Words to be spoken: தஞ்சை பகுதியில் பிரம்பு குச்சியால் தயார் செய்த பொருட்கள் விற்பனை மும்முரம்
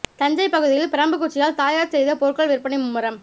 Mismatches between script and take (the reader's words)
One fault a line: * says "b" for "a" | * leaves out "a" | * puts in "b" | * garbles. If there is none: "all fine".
all fine